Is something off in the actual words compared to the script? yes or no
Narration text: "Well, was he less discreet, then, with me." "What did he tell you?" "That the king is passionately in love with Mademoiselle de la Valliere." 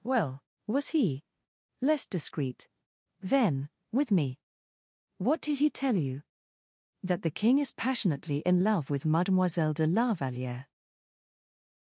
no